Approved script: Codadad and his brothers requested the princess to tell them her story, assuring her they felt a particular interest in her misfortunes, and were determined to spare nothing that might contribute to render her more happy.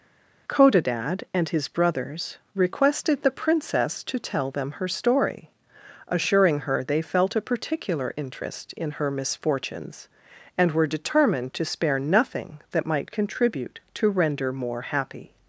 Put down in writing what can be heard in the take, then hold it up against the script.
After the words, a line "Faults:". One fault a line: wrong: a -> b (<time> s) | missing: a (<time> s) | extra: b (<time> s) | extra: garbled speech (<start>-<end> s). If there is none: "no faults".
Codadad and his brothers requested the princess to tell them her story, assuring her they felt a particular interest in her misfortunes, and were determined to spare nothing that might contribute to render more happy.
Faults:
missing: her (14.5 s)